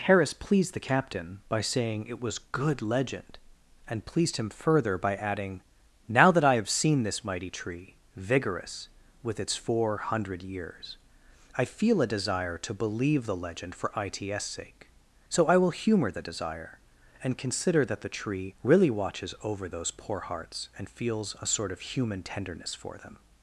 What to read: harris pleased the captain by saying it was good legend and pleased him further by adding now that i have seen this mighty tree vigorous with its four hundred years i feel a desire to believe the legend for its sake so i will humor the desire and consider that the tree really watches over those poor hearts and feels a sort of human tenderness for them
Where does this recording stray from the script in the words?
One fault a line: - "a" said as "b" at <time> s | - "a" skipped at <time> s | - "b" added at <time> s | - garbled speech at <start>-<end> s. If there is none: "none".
none